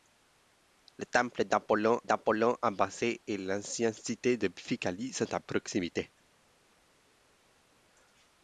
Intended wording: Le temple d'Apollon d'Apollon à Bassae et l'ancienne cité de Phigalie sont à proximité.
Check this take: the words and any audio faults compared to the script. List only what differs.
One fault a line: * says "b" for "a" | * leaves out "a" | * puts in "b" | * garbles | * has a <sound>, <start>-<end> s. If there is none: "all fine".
all fine